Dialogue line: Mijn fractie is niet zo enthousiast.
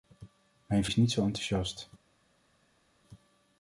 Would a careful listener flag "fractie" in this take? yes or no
yes